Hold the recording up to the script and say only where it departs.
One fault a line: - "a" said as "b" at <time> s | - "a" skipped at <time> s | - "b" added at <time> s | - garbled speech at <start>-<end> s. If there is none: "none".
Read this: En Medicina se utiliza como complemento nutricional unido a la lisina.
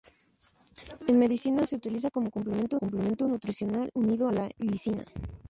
- "complemento" added at 2.8 s
- "a" skipped at 4.3 s